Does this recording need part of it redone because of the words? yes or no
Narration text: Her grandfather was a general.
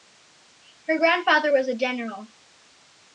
no